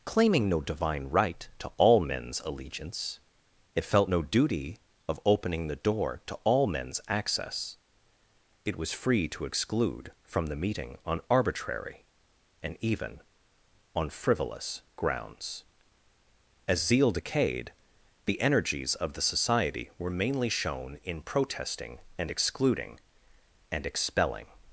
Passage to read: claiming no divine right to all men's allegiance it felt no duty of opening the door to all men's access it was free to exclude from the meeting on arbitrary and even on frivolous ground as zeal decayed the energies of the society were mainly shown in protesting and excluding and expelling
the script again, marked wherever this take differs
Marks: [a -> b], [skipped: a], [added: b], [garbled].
claiming no divine right to all men's allegiance it felt no duty of opening the door to all men's access it was free to exclude from the meeting on arbitrary and even on frivolous [ground -> grounds] as zeal decayed the energies of the society were mainly shown in protesting and excluding and expelling